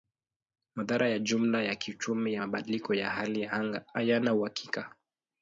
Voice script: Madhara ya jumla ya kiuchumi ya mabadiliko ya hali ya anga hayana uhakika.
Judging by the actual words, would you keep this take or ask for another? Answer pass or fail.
pass